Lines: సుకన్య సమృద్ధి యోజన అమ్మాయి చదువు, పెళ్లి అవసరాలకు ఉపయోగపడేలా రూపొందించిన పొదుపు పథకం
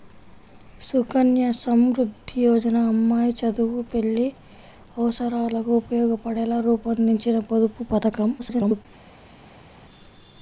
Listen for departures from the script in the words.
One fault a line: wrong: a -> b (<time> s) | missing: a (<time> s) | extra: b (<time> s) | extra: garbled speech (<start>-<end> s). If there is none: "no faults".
extra: garbled speech (8.4-8.9 s)